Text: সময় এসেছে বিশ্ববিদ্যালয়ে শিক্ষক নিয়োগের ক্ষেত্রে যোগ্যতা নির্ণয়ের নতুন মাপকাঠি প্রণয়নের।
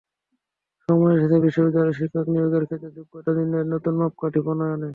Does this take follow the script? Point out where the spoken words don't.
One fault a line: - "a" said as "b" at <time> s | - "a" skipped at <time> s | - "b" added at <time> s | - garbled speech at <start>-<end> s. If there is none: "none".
none